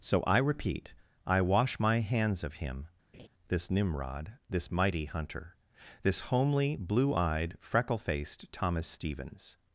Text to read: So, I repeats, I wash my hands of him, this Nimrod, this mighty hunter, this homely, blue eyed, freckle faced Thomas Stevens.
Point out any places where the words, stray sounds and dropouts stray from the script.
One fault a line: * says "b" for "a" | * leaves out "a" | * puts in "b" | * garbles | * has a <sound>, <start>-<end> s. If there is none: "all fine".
* says "repeat" for "repeats"
* has a laugh, 3.1-3.3 s